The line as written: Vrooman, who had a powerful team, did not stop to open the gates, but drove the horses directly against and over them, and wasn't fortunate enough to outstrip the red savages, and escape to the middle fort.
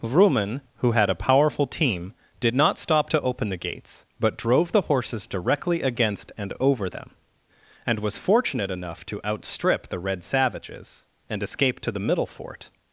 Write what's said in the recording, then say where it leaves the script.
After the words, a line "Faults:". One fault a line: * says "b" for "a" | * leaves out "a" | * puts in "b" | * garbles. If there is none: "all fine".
Vrooman, who had a powerful team, did not stop to open the gates, but drove the horses directly against and over them, and was fortunate enough to outstrip the red savages, and escape to the middle fort.
Faults:
* says "was" for "wasn't"